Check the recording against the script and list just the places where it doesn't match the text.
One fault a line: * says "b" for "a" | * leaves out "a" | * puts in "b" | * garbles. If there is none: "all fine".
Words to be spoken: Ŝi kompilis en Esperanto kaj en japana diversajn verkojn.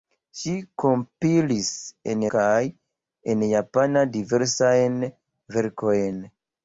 * leaves out "Esperanto"